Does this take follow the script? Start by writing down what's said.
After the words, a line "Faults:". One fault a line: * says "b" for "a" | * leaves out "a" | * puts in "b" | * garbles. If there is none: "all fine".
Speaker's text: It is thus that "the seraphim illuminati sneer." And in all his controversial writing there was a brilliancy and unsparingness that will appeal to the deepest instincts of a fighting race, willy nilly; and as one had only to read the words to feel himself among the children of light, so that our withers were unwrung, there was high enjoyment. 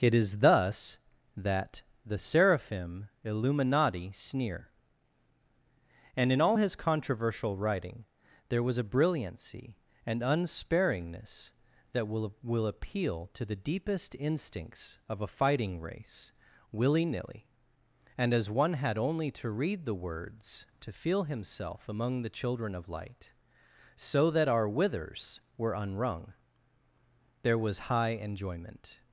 It is thus that "the seraphim illuminati sneer." And in all his controversial writing there was a brilliancy and unsparingness that will will appeal to the deepest instincts of a fighting race, willy nilly; and as one had only to read the words to feel himself among the children of light, so that our withers were unwrung, there was high enjoyment.
Faults:
* puts in "will"